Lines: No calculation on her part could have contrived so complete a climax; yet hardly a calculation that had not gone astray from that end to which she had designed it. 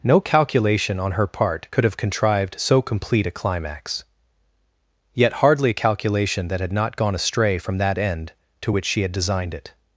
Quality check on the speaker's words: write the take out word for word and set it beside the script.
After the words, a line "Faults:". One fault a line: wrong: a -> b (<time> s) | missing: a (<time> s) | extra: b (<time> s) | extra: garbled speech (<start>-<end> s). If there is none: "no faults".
No calculation on her part could have contrived so complete a climax; yet hardly a calculation that had not gone astray from that end to which she had designed it.
Faults:
no faults